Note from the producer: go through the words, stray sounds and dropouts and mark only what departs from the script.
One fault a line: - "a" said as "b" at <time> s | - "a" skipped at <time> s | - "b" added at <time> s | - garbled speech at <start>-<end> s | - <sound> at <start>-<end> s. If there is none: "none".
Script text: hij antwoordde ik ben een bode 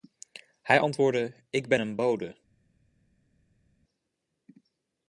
none